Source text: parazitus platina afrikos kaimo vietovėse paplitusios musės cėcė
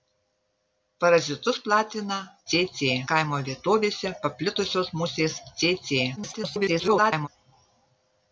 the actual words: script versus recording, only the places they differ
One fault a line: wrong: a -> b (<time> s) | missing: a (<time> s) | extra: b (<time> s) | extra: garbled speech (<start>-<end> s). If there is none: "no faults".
wrong: afrikos -> cėcė (2.5 s)
extra: garbled speech (6.2-7.3 s)